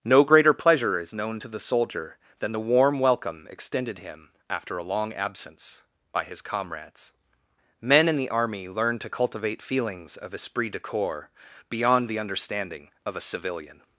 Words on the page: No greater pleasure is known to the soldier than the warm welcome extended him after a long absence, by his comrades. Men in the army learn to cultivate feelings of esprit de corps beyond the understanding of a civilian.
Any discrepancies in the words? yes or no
no